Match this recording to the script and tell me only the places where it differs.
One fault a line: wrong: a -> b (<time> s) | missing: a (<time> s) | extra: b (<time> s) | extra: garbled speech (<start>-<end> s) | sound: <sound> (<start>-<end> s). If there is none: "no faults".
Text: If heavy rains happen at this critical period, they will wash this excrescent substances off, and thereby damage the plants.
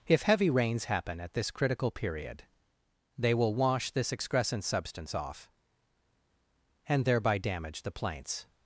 wrong: substances -> substance (4.6 s)